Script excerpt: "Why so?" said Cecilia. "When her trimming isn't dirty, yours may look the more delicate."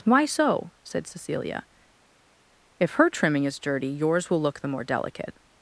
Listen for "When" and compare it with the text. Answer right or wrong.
wrong